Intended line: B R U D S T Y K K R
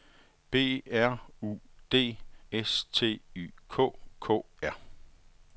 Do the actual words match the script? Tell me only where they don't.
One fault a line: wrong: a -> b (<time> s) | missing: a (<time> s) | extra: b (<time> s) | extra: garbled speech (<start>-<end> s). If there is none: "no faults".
no faults